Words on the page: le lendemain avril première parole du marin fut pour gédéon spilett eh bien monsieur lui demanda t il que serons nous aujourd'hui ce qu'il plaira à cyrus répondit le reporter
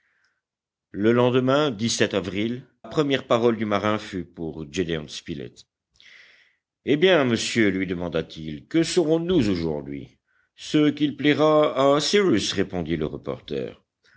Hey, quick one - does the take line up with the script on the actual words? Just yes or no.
yes